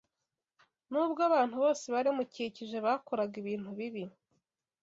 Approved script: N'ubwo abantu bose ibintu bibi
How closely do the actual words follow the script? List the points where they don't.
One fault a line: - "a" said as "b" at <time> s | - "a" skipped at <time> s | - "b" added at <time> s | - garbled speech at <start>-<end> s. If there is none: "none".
- "bari bamukikije bakoraga" added at 1.9 s